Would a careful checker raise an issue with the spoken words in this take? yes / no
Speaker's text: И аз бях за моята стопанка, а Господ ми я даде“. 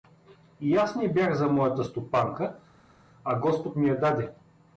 yes